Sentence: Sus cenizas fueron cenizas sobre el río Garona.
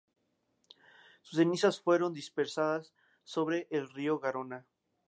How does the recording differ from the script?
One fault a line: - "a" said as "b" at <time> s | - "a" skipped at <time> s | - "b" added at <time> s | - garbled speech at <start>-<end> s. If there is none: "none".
- "cenizas" said as "dispersadas" at 2.1 s